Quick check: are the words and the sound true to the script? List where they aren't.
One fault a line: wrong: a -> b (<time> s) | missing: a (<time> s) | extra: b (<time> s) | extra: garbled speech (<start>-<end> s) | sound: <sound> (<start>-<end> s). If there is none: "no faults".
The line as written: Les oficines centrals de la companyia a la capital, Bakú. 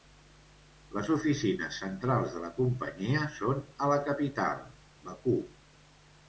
extra: són (3.4 s)